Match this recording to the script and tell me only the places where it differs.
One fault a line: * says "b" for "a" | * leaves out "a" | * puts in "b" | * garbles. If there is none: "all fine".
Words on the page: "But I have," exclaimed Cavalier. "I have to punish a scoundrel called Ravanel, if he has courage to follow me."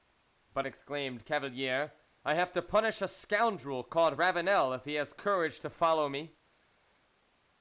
* leaves out "I have"